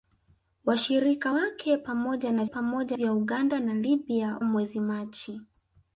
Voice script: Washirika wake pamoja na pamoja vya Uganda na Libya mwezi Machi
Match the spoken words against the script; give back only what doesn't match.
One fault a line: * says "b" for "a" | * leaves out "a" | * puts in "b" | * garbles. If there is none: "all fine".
all fine